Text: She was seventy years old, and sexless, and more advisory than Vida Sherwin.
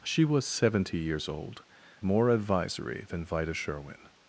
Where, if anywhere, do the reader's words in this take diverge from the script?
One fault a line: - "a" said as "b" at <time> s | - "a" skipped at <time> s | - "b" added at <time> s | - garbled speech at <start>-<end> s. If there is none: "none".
- "and sexless and" skipped at 1.6 s